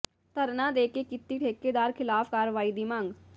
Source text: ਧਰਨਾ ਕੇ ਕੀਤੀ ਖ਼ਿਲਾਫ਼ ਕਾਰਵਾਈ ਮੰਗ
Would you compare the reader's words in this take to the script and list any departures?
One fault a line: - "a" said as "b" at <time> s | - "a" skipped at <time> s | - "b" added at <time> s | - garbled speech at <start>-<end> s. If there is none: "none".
- "ਦੇ" added at 0.7 s
- "ਠੇਕੇਦਾਰ" added at 1.4 s
- "ਦੀ" added at 2.7 s